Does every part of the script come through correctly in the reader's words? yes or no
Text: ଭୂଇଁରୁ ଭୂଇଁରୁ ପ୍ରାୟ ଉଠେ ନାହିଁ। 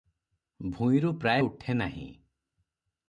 no